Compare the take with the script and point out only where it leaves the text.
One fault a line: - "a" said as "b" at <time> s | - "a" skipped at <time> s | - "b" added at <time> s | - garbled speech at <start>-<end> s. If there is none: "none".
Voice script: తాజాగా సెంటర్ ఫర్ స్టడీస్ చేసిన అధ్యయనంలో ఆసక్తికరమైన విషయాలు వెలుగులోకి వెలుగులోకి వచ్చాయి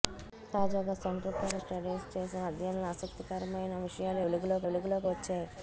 none